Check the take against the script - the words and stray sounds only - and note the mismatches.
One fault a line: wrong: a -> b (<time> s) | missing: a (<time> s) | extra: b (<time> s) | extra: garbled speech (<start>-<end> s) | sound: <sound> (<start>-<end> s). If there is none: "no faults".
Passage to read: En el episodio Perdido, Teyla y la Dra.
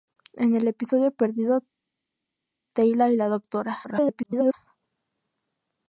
extra: garbled speech (3.8-4.5 s)